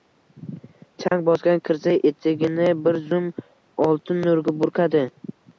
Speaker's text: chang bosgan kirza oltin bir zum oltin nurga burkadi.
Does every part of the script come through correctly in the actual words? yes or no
no